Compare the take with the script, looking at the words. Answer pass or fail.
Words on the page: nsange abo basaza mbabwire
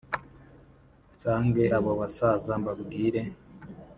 pass